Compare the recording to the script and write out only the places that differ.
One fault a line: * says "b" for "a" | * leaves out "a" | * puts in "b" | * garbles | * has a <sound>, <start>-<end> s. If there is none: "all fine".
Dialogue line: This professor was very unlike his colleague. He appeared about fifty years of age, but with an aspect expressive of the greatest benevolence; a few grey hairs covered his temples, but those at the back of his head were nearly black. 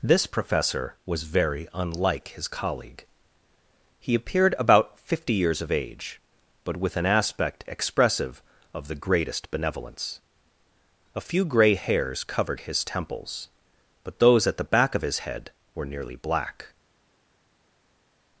all fine